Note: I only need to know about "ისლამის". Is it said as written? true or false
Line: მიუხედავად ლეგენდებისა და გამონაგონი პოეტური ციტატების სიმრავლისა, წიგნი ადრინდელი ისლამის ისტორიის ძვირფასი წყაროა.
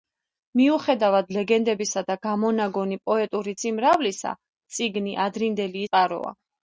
false